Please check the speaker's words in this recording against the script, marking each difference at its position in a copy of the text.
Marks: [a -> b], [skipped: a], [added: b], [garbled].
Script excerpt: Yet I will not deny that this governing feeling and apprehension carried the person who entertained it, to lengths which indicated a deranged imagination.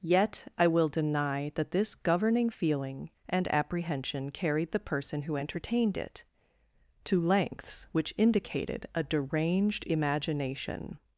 Yet I will [skipped: not] deny that this governing feeling and apprehension carried the person who entertained it, to lengths which indicated a deranged imagination.